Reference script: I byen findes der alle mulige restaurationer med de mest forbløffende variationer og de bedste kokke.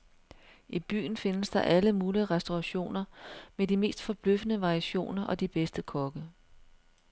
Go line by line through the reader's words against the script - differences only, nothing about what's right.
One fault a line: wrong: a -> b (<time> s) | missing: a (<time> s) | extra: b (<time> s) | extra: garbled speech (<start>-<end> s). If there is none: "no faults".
no faults